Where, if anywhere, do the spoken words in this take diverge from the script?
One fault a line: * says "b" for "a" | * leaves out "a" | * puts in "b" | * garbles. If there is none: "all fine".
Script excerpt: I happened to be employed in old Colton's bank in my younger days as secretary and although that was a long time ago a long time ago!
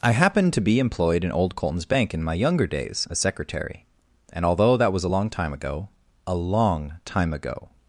all fine